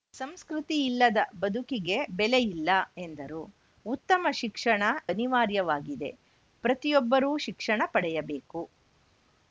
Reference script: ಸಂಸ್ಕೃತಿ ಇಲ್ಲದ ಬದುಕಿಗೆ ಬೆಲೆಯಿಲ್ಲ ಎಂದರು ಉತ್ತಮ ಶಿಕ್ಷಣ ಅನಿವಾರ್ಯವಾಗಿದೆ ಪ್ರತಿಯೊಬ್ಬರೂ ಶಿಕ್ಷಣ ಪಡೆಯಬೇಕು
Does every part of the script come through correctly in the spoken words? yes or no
yes